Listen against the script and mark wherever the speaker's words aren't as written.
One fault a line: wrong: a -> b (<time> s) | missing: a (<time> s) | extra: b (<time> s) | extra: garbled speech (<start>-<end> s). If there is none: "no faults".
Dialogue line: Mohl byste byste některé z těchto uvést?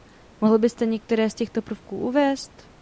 missing: byste (0.8 s)
extra: prvků (1.6 s)